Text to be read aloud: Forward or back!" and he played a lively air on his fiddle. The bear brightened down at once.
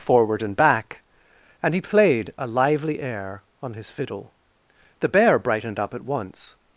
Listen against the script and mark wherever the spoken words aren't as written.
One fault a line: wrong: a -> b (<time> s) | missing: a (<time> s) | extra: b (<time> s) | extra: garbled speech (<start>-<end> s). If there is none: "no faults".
wrong: or -> and (0.4 s)
wrong: down -> up (5.8 s)